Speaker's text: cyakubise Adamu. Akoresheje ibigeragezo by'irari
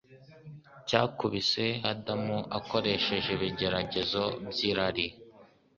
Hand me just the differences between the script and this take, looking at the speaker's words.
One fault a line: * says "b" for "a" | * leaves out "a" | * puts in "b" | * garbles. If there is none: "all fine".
all fine